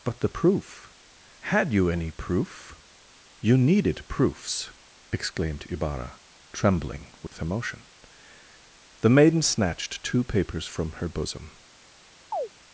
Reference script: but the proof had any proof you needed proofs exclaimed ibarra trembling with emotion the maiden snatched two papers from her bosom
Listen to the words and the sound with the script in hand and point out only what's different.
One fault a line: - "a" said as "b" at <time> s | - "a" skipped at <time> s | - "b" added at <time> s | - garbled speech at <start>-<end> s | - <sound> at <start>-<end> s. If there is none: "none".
- "you" added at 1.7 s
- dropout at 7.3-7.3 s
- chirp at 12.3-12.5 s